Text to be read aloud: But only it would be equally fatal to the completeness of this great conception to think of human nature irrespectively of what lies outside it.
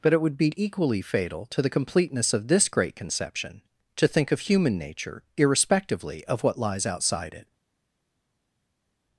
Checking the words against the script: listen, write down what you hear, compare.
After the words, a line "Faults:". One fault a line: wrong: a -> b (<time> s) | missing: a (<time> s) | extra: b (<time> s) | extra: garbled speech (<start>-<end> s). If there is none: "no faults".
But it would be equally fatal to the completeness of this great conception to think of human nature irrespectively of what lies outside it.
Faults:
missing: only (0.1 s)